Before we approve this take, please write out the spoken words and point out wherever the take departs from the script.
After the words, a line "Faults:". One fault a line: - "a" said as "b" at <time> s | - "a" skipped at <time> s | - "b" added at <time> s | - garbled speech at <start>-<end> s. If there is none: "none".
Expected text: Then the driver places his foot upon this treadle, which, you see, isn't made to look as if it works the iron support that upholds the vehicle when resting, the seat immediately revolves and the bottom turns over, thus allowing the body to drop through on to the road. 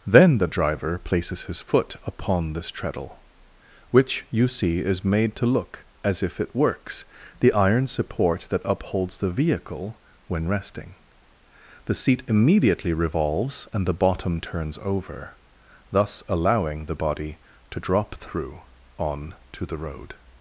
Then the driver places his foot upon this treadle, which, you see, is made to look as if it works the iron support that upholds the vehicle when resting, the seat immediately revolves and the bottom turns over, thus allowing the body to drop through on to the road.
Faults:
- "isn't" said as "is" at 4.8 s